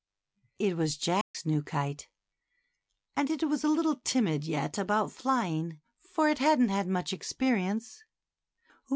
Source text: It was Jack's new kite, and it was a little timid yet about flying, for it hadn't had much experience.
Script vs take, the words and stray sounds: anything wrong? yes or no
yes